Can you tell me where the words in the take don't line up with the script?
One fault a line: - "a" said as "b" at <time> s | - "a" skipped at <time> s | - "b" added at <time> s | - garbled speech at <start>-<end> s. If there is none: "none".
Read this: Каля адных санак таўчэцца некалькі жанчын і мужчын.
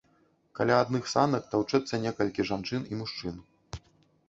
none